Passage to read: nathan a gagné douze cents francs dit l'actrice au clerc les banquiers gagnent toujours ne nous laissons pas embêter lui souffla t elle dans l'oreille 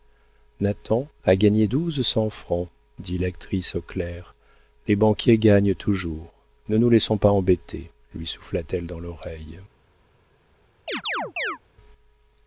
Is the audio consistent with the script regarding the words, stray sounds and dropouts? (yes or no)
no